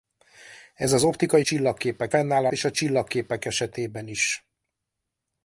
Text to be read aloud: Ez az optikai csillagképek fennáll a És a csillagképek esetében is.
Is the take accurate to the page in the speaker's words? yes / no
yes